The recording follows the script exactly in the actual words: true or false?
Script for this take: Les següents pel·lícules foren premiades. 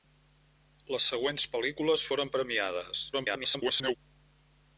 false